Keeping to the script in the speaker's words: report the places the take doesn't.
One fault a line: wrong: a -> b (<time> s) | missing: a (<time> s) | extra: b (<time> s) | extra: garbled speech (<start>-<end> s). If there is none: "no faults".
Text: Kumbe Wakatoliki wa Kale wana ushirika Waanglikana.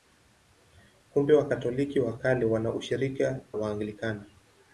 no faults